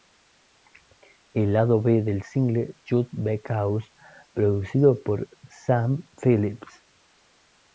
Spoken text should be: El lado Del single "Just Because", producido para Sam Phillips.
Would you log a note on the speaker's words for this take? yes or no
yes